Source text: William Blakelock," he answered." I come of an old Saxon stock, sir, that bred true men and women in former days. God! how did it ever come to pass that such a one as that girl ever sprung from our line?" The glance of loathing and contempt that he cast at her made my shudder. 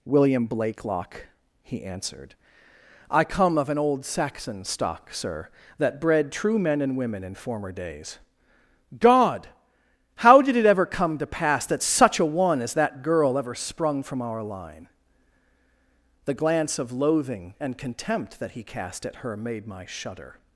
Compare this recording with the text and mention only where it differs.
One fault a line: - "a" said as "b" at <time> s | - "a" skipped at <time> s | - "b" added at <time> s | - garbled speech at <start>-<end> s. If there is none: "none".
none